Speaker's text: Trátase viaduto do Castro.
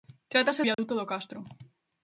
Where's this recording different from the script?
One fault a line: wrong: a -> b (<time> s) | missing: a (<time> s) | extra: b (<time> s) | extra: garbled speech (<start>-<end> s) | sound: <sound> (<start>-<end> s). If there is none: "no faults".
sound: dropout (0.7-0.8 s)